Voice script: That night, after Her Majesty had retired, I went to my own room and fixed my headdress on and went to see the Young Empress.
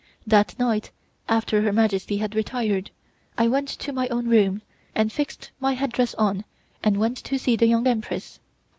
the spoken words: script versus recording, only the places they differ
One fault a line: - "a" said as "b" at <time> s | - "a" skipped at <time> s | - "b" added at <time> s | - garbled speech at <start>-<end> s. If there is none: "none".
none